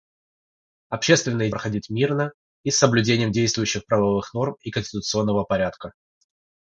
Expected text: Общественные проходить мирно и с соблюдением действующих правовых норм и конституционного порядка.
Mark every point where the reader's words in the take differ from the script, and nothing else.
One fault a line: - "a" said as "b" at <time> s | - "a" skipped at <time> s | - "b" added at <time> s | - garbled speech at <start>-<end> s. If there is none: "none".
none